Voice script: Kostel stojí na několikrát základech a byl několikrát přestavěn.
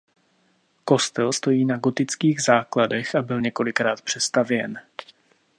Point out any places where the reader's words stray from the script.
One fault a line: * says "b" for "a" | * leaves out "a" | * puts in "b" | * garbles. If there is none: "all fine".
* says "gotických" for "několikrát"